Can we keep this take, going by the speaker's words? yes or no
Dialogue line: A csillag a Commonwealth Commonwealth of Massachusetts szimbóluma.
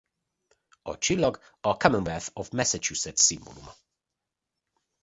no